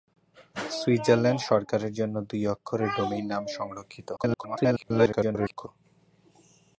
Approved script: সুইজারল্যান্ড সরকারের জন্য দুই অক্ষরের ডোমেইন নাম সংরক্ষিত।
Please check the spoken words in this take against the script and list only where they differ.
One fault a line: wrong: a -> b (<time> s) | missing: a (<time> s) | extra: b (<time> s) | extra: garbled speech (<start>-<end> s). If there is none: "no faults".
extra: garbled speech (4.2-5.7 s)